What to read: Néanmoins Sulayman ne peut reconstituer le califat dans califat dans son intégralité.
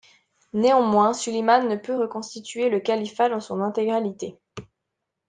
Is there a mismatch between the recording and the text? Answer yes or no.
yes